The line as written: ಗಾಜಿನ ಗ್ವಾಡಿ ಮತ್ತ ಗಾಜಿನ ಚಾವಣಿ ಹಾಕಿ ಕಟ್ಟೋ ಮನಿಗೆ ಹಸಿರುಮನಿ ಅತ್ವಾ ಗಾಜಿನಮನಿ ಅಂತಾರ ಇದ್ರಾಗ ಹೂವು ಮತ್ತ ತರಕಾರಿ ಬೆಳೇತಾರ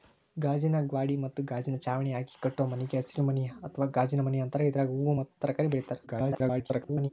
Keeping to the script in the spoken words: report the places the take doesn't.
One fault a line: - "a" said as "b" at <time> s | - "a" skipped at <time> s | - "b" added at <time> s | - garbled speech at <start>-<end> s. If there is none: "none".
- garbled speech at 6.1-7.1 s